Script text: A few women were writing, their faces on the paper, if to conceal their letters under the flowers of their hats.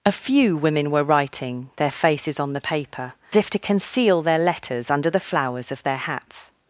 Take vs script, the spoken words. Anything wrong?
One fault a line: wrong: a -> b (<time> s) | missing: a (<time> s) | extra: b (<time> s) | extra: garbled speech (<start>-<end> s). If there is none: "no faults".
no faults